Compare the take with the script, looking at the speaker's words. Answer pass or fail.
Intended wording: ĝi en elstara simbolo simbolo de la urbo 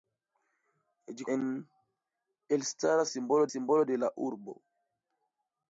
pass